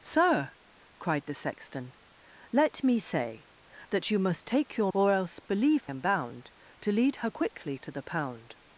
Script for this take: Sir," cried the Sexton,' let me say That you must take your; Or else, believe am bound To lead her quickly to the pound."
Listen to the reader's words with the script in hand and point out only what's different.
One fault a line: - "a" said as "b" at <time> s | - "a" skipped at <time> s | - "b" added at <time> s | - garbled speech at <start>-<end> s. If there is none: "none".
none